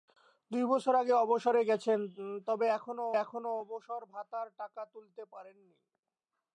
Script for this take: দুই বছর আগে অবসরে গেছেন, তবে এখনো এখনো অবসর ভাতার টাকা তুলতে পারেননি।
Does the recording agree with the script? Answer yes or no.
yes